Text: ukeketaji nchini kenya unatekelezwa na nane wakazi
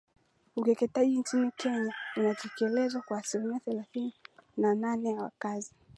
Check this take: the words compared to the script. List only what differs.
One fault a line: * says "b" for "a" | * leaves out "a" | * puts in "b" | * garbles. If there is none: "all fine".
* puts in "kwa asilimia thelathini"
* puts in "ya"